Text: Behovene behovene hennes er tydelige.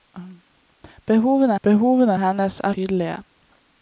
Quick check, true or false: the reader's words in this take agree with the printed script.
true